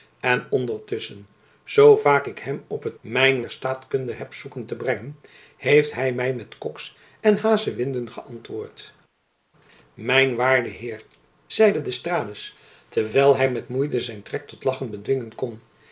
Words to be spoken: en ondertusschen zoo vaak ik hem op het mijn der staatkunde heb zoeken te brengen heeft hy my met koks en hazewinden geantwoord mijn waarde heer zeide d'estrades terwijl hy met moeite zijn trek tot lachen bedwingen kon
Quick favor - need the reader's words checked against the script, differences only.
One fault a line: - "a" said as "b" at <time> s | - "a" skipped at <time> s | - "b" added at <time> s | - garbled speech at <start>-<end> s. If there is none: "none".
none